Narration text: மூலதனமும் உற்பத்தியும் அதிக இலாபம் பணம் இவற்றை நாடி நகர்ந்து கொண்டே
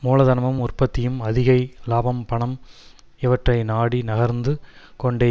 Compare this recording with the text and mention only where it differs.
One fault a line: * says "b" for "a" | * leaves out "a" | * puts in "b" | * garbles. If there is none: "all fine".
all fine